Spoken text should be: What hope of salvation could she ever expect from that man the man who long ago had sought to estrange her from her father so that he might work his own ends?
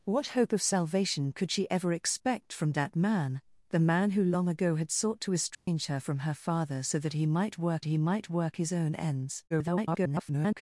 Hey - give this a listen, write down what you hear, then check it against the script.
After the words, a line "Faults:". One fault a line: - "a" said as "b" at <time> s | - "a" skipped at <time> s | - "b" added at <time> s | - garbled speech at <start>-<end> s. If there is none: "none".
What hope of salvation could she ever expect from that man the man who long ago had sought to estrange her from her father so that he might work he might work his own ends? [garbled]
Faults:
- "he might work" added at 7.8 s
- garbled speech at 9.5-10.6 s